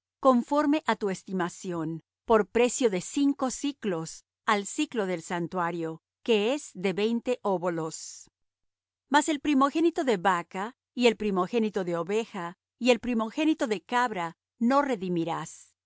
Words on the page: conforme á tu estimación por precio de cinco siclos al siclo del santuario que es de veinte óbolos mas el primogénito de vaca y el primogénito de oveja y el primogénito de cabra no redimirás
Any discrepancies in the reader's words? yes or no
no